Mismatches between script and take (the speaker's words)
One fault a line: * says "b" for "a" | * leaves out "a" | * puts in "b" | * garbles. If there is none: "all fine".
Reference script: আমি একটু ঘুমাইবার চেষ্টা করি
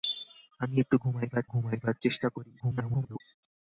* puts in "ঘুমাইবার"
* garbles